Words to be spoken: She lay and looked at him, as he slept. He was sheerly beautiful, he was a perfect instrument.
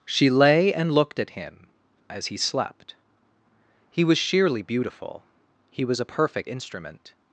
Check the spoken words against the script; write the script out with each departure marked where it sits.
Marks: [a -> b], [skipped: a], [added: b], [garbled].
She lay and looked at him, as he slept. He was sheerly beautiful, he was a perfect instrument.